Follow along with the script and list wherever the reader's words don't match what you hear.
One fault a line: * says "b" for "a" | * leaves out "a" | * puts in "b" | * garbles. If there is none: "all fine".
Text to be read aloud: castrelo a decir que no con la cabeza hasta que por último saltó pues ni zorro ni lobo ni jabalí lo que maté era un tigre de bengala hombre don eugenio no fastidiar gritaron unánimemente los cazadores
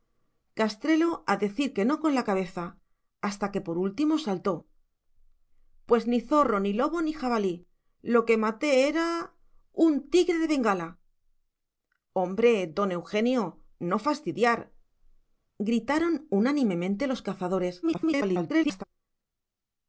* garbles